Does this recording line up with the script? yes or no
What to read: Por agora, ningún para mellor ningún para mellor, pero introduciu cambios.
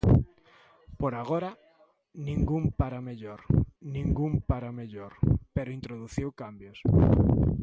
yes